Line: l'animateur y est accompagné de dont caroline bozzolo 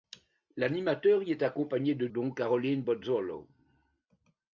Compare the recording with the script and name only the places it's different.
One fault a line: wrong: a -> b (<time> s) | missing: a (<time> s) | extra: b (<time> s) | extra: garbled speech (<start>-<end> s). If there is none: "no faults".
no faults